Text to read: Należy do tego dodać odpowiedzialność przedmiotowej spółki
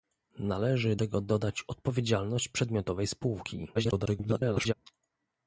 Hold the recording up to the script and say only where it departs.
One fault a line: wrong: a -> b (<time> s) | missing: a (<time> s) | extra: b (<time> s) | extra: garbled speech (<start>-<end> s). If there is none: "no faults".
missing: do (0.9 s)
extra: garbled speech (3.7-4.7 s)